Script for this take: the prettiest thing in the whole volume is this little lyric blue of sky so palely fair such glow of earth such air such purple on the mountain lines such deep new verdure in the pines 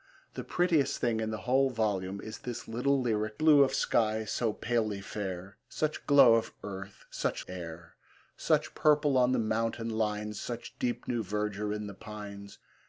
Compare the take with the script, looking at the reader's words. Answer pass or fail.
pass